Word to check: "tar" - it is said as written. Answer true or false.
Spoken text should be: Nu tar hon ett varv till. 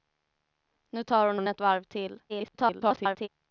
true